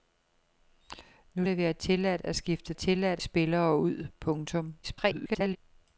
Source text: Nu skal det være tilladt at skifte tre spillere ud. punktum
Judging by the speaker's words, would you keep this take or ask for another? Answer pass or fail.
fail